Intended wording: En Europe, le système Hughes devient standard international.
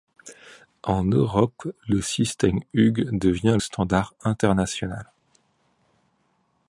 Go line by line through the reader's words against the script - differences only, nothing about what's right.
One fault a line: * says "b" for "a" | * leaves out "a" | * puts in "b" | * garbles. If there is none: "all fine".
all fine